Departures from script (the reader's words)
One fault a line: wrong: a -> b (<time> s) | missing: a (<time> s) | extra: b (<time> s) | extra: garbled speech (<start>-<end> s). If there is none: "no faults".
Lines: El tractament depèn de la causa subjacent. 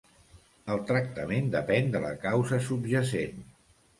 no faults